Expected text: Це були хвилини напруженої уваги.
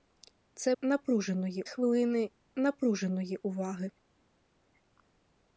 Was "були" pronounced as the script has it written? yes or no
no